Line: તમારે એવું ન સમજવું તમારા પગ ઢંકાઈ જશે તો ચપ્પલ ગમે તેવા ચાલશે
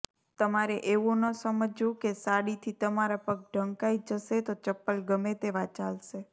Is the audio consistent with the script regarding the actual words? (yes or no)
no